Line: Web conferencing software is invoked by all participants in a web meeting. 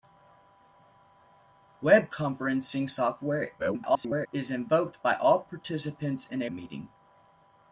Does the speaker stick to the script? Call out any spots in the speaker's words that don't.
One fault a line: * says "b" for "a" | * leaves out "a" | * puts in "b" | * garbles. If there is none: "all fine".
* garbles
* leaves out "web"